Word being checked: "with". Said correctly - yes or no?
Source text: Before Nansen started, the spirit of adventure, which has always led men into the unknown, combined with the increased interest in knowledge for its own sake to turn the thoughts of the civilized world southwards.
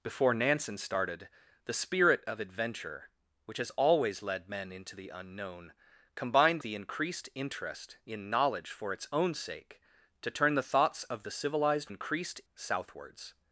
no